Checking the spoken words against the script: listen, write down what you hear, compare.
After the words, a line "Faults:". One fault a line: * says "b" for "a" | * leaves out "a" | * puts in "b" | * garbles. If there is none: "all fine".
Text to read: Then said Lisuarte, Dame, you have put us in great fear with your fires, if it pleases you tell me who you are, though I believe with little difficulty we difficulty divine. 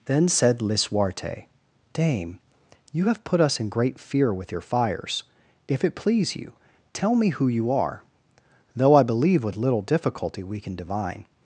Then said Lisuarte, Dame, you have put us in great fear with your fires, if it please you tell me who you are, though I believe with little difficulty we can divine.
Faults:
* says "please" for "pleases"
* says "can" for "difficulty"